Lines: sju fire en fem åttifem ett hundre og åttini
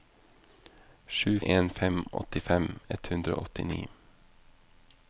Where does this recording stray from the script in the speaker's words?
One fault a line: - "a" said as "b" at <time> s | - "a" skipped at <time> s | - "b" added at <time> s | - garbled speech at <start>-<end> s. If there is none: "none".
- "fire" skipped at 1.4 s